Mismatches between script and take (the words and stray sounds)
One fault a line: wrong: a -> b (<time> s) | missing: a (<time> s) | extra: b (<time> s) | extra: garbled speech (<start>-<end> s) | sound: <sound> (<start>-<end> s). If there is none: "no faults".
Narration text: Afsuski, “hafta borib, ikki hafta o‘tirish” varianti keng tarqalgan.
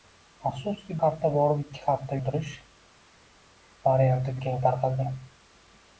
no faults